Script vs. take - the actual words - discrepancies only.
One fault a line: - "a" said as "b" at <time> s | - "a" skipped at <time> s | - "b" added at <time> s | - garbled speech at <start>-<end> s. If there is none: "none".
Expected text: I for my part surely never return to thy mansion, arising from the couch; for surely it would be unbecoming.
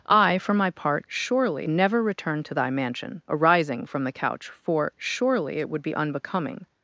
none